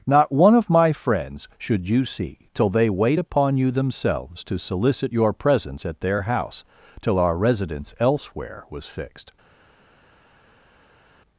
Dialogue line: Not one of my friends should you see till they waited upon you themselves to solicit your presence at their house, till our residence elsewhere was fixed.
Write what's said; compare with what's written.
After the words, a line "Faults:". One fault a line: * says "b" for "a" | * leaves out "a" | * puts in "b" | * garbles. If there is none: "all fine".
Not one of my friends should you see till they wait upon you themselves to solicit your presence at their house, till our residence elsewhere was fixed.
Faults:
* says "wait" for "waited"